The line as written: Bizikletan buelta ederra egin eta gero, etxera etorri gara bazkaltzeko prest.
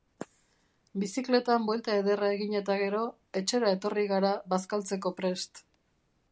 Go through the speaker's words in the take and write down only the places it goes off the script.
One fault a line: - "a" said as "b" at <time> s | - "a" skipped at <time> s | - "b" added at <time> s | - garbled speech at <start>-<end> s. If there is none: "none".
none